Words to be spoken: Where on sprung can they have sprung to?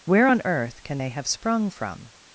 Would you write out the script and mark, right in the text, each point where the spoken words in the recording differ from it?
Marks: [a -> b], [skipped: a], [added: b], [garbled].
Where on [sprung -> earth] can they have sprung [to? -> from]